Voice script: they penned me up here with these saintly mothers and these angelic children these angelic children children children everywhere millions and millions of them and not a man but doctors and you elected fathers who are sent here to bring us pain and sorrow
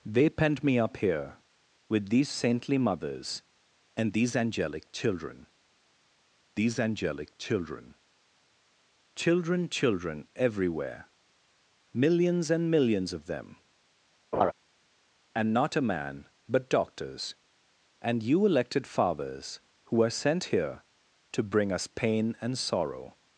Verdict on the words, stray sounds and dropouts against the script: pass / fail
fail